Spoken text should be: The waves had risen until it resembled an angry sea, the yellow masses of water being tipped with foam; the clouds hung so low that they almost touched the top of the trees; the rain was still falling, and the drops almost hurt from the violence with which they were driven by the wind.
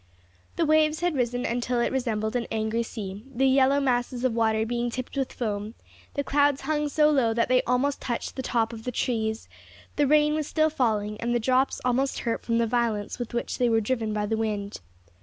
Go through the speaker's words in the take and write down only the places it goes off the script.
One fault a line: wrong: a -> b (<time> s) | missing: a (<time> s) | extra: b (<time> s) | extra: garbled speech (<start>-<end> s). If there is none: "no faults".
no faults